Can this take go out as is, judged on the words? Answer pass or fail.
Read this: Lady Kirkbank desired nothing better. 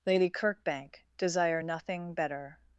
fail